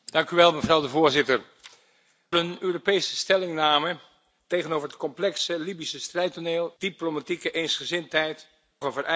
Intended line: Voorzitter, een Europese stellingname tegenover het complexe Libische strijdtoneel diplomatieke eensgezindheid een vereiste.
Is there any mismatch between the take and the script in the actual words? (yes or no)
no